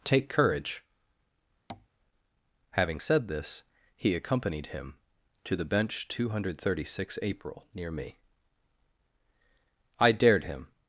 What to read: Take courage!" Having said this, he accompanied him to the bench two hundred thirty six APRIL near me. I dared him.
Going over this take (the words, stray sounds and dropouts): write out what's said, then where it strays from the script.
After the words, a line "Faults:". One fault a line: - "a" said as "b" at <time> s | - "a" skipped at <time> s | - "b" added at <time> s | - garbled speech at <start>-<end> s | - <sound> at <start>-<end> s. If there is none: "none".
Take courage!" Having said this, he accompanied him to the bench two hundred thirty six APRIL near me. I dared him.
Faults:
- tap at 1.7-1.9 s